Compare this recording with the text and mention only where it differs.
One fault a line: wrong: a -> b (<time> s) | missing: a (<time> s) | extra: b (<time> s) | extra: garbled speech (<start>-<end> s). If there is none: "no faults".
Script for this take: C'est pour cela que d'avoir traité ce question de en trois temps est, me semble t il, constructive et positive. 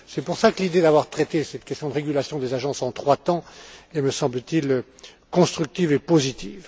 extra: l'idée (0.6 s)
wrong: ce -> cette (1.4 s)
extra: régulation des agences (1.9 s)